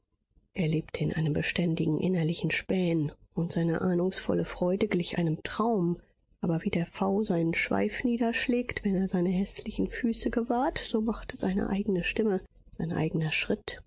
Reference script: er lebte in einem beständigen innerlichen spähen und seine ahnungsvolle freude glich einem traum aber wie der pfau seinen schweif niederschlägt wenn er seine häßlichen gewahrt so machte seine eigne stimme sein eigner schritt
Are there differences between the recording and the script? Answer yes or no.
yes